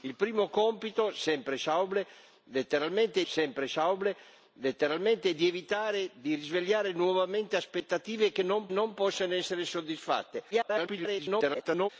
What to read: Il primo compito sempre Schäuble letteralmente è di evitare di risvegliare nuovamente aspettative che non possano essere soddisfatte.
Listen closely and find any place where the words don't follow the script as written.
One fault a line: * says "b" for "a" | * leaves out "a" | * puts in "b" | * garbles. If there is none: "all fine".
* puts in "sempre Schäuble letteralmente"
* puts in "non"
* garbles